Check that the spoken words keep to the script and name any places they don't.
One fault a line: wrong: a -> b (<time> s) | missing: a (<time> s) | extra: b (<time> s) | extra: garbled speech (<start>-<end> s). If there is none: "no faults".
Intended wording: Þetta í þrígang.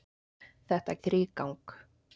no faults